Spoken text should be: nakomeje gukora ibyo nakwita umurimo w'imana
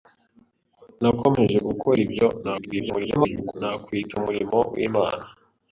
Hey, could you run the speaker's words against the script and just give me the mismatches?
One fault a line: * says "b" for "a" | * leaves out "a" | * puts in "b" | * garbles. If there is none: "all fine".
* garbles